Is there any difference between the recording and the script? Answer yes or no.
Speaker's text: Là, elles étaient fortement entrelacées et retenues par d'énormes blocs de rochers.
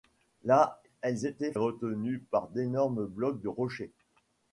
yes